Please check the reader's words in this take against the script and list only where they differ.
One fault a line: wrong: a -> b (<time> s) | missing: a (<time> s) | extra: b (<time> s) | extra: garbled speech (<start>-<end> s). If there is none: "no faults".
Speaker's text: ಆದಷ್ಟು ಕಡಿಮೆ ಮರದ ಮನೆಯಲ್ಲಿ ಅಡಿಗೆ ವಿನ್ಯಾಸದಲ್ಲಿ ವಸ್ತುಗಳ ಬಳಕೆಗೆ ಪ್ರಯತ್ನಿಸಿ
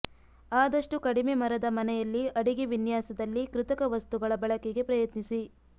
extra: ಕೃತಕ (3.5 s)